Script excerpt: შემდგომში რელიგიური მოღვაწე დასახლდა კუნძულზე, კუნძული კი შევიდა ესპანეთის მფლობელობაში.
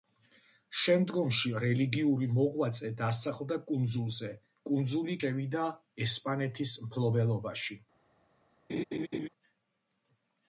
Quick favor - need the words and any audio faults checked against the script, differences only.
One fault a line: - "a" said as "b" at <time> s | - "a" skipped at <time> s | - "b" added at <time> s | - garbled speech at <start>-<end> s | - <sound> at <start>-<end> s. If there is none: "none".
- "კი" skipped at 5.2 s
- laugh at 8.7-9.3 s